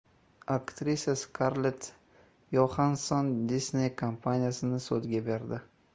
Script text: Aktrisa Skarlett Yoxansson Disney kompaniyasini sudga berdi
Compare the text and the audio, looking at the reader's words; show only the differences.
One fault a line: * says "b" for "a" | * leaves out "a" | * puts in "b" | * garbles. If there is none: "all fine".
all fine